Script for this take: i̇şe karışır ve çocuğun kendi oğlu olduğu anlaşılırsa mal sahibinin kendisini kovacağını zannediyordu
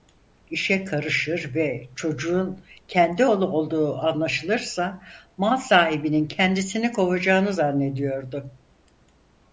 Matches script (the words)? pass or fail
pass